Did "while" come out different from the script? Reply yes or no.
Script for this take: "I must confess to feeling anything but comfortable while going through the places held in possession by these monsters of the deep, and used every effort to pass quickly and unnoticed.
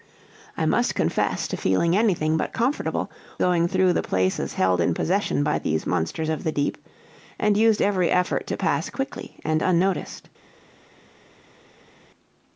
yes